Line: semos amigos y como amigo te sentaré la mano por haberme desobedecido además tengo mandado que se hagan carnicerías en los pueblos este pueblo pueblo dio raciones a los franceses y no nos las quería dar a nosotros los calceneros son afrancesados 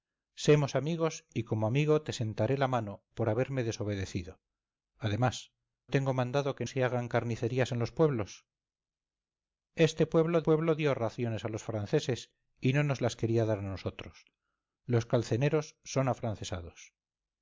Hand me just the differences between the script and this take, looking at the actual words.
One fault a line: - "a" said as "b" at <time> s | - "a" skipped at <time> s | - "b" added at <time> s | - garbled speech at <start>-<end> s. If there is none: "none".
none